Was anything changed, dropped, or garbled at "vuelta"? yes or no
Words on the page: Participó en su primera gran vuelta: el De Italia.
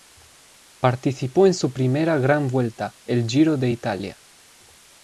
no